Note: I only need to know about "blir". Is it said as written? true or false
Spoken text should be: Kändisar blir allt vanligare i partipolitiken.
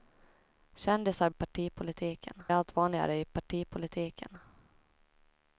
false